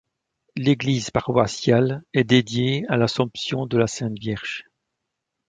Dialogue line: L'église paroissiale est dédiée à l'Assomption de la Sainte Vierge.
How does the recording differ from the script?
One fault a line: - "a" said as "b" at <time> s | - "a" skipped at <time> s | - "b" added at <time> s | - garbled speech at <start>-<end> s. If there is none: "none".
none